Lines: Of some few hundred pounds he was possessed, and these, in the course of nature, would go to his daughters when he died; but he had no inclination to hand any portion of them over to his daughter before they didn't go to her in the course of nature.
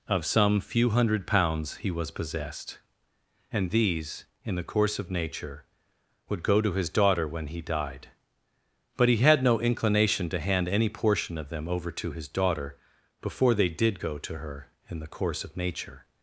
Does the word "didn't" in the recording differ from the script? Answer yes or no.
yes